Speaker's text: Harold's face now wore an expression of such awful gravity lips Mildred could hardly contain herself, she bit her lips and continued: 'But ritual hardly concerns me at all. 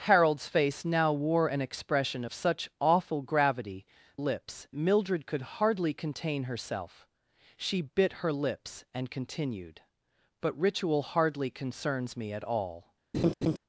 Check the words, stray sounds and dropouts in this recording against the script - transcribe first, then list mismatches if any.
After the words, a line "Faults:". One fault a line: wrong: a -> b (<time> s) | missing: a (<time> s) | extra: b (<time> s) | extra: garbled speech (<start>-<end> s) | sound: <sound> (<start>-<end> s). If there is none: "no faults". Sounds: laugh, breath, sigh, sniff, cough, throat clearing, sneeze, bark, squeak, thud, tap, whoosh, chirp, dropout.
Harold's face now wore an expression of such awful gravity lips Mildred could hardly contain herself, she bit her lips and continued: 'But ritual hardly concerns me at all.
Faults:
sound: laugh (13.1-13.6 s)